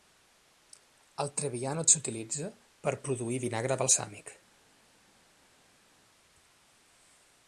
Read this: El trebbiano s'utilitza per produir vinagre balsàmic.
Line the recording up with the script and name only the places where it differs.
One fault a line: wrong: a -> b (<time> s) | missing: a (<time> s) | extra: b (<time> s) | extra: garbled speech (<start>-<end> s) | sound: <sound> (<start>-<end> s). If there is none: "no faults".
no faults